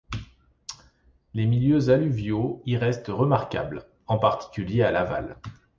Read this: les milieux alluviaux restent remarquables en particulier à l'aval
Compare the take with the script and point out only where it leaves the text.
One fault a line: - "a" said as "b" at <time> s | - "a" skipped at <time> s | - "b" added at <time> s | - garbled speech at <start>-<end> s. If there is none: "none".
- "y" added at 2.6 s